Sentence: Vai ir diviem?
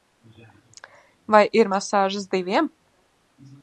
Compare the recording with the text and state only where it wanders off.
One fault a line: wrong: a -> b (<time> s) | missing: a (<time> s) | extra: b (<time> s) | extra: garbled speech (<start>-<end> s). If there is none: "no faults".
extra: masāžas (1.7 s)